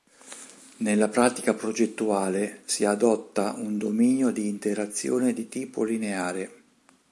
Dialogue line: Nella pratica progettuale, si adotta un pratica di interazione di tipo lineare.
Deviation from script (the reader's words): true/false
true